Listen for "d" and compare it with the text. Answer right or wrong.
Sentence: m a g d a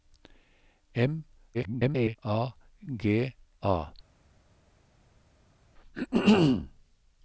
wrong